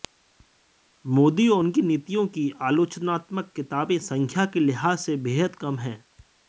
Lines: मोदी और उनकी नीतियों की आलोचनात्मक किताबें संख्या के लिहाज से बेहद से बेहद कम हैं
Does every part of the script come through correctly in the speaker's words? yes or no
no